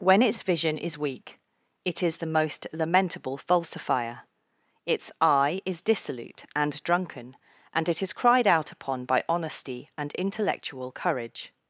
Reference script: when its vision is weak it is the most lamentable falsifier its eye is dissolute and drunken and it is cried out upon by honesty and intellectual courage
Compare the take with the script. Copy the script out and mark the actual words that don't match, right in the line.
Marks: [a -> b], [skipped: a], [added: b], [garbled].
when its vision is weak it is the most lamentable falsifier its eye is dissolute and drunken and it is cried out upon by honesty and intellectual courage